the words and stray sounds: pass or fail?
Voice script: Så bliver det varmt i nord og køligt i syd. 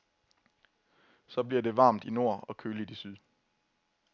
pass